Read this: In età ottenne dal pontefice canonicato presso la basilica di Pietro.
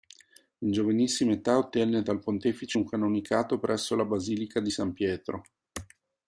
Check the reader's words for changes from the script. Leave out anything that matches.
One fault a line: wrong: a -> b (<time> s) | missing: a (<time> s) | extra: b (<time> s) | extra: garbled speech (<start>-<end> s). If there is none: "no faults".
extra: giovanissima (0.7 s)
extra: un (2.7 s)
extra: San (4.7 s)